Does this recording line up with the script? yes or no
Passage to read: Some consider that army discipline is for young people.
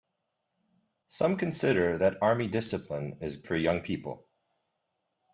yes